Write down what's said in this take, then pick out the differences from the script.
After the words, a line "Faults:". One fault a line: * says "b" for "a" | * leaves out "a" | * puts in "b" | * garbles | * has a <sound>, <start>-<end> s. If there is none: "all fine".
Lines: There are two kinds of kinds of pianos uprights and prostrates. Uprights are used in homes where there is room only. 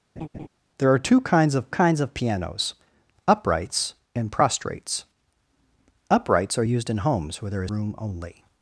There are two kinds of kinds of pianos uprights and prostrates. Uprights are used in homes where there is room only.
Faults:
* has a laugh, 0.2-0.5 s